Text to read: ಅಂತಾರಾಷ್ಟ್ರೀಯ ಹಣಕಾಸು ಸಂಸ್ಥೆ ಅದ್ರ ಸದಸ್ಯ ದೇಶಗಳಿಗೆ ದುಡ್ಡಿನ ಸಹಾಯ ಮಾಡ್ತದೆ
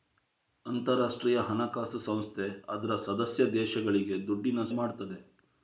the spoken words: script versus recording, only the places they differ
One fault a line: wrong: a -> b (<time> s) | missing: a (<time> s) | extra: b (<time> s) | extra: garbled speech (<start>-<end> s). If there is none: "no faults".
missing: ಸಹಾಯ (4.6 s)